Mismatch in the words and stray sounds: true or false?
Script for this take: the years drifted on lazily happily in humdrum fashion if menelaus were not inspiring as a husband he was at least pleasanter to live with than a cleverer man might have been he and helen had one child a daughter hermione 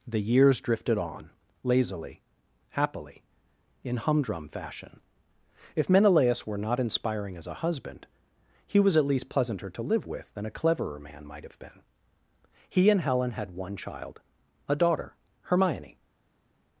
false